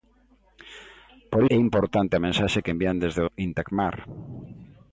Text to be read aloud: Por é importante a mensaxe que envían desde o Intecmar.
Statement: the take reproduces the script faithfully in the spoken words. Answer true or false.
true